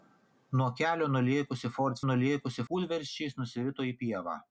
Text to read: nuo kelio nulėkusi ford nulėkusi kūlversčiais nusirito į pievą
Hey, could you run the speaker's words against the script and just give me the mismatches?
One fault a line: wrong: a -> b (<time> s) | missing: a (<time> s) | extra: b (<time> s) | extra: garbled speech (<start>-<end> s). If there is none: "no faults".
no faults